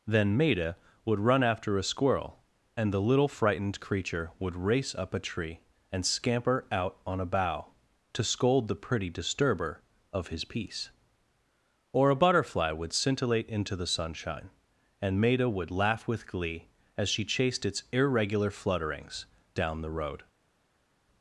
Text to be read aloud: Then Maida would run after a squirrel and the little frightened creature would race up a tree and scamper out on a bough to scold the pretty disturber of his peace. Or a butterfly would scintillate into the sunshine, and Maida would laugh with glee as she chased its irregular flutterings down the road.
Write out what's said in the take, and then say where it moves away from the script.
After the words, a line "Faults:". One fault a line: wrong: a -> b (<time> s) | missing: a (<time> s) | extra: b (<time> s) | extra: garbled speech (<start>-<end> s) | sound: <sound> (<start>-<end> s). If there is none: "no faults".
Then Maida would run after a squirrel and the little frightened creature would race up a tree and scamper out on a bough to scold the pretty disturber of his peace. Or a butterfly would scintillate into the sunshine, and Maida would laugh with glee as she chased its irregular flutterings down the road.
Faults:
no faults